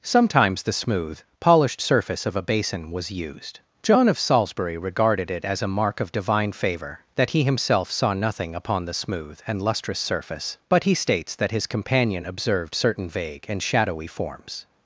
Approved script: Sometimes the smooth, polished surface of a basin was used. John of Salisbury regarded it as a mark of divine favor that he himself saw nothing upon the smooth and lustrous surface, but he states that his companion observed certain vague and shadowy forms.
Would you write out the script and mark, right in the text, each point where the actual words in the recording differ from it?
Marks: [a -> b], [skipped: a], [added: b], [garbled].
Sometimes the smooth, polished surface of a basin was used. John of Salisbury regarded it as a mark of divine favor that he himself saw nothing upon the smooth and lustrous surface, but he states that his companion observed certain vague and shadowy forms.